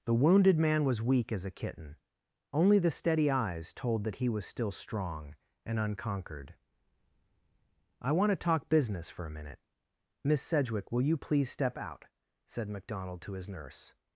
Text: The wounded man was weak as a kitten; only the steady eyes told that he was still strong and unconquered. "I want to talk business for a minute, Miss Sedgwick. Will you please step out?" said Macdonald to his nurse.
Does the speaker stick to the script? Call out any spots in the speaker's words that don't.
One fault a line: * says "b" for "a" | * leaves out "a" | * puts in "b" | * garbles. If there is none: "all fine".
all fine